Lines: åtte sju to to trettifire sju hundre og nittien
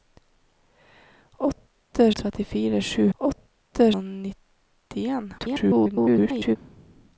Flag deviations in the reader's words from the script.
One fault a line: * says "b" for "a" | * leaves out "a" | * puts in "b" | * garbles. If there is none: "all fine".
* leaves out "sju to to"
* says "åtte" for "hundre"
* garbles